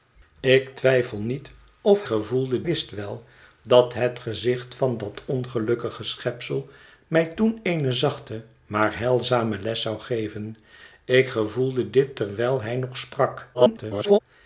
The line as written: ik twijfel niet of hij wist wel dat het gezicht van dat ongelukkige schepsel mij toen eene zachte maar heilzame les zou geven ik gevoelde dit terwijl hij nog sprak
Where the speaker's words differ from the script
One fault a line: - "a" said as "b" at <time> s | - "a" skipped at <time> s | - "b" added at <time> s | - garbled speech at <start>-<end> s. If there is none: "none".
- "hij" said as "gevoelde" at 2.0 s
- garbled speech at 13.5-14.2 s